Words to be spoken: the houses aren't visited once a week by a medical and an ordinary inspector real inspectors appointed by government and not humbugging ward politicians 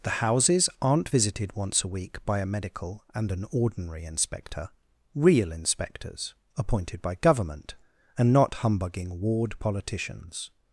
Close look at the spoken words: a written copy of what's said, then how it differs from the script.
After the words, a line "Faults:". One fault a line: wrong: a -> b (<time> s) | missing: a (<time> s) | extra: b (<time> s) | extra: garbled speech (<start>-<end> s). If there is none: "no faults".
the houses aren't visited once a week by a medical and an ordinary inspector real inspectors appointed by government and not humbugging ward politicians
Faults:
no faults